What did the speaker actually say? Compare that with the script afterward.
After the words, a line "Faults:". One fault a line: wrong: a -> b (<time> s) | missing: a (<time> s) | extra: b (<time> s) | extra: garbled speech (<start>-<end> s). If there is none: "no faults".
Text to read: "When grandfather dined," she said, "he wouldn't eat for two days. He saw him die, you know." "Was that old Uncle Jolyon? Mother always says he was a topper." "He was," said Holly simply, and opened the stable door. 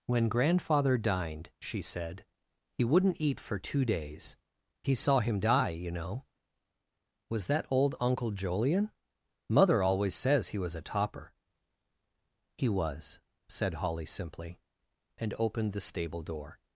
"When grandfather dined," she said, "he wouldn't eat for two days. He saw him die, you know." "Was that old Uncle Jolyon? Mother always says he was a topper." "He was," said Holly simply, and opened the stable door.
Faults:
no faults